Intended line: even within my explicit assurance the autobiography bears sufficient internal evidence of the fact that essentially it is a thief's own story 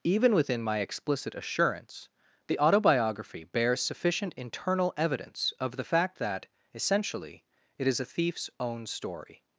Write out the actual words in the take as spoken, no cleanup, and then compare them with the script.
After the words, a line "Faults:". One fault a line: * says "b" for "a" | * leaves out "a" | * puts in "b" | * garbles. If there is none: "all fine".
even within my explicit assurance the autobiography bears sufficient internal evidence of the fact that essentially it is a thief's own story
Faults:
all fine